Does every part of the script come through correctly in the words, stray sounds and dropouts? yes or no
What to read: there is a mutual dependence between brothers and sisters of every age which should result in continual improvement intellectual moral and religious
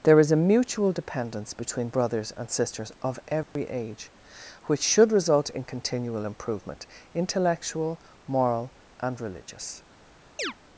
no